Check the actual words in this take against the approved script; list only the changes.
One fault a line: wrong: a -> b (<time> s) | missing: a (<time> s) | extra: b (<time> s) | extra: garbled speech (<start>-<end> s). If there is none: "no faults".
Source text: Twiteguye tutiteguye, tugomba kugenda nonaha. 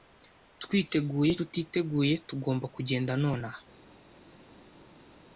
no faults